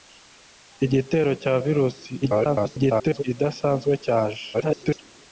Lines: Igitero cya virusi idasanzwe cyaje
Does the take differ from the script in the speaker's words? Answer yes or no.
yes